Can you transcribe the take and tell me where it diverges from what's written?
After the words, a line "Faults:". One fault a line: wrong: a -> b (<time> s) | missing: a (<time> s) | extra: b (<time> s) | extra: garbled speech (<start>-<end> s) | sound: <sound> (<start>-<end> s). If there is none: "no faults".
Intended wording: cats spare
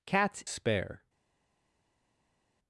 cats spare
Faults:
no faults